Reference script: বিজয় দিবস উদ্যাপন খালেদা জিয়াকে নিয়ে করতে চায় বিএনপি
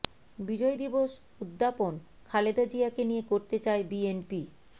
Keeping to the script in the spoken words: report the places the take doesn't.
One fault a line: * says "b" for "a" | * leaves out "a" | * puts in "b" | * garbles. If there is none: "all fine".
all fine